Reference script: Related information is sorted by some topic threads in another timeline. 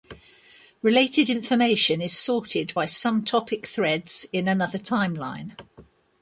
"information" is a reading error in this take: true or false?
false